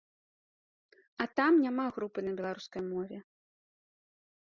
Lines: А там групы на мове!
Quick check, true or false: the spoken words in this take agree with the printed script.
false